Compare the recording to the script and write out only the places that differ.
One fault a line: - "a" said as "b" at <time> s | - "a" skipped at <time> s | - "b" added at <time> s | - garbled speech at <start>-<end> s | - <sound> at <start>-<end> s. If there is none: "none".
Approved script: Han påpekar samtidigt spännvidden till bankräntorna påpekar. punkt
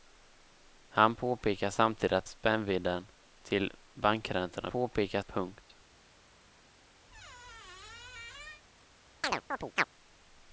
- squeak at 7.1-8.6 s
- chirp at 9.2-9.8 s